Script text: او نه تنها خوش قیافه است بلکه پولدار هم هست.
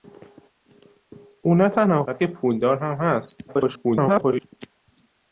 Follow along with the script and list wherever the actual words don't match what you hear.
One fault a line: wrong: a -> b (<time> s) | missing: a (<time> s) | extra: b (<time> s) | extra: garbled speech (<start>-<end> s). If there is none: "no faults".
missing: خوش قیافه است (2.0 s)
extra: garbled speech (3.5-4.4 s)